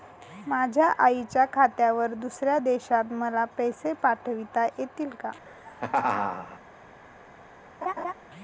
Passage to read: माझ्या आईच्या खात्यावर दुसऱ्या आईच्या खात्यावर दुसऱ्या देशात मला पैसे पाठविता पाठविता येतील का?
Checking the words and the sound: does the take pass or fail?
fail